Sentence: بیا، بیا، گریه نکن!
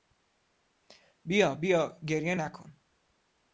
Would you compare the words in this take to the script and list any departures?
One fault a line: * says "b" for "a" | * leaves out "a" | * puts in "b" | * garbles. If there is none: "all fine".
all fine